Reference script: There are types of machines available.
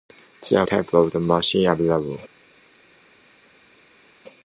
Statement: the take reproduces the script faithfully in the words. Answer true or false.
true